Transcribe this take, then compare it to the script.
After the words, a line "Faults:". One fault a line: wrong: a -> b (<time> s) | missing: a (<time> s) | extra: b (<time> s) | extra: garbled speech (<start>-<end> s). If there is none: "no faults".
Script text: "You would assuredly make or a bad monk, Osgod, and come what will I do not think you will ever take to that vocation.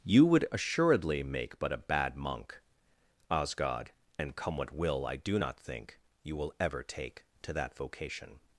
"You would assuredly make but a bad monk, Osgod, and come what will I do not think you will ever take to that vocation.
Faults:
wrong: or -> but (1.6 s)